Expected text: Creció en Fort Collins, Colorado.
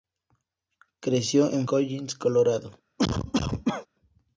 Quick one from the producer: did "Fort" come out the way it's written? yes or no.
no